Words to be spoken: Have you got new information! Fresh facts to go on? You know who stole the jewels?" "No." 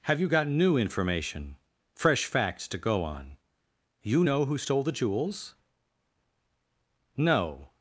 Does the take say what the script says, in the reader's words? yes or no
yes